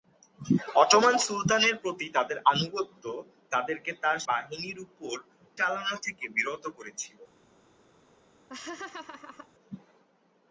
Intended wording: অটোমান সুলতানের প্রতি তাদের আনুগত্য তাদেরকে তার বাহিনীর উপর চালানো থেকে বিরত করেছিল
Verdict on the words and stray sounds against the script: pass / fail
fail